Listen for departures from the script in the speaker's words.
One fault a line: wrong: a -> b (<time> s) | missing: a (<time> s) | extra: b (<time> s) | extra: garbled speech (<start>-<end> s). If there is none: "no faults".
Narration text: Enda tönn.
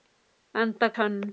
no faults